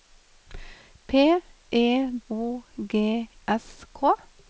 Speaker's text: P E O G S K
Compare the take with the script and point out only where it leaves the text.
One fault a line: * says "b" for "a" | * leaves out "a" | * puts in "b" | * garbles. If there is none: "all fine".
all fine